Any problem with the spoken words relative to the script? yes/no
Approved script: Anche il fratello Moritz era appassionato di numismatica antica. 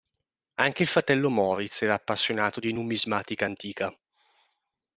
no